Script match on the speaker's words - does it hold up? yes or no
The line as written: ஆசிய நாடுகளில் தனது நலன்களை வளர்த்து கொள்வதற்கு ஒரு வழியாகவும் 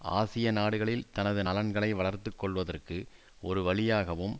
yes